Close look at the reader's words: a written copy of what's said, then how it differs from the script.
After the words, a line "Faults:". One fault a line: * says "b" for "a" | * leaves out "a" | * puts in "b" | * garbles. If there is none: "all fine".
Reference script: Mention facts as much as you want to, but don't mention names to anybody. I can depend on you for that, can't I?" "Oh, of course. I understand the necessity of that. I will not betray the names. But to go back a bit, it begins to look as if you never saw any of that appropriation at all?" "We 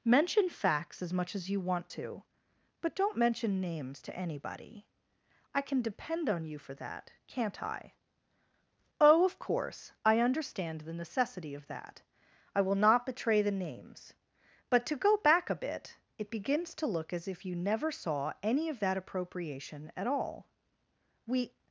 Mention facts as much as you want to, but don't mention names to anybody. I can depend on you for that, can't I?" "Oh, of course. I understand the necessity of that. I will not betray the names. But to go back a bit, it begins to look as if you never saw any of that appropriation at all?" "We
Faults:
all fine